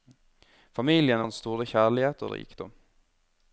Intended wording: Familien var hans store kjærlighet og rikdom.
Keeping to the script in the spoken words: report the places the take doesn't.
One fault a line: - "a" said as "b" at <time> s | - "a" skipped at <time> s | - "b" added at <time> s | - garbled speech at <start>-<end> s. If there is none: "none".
- "var" skipped at 1.2 s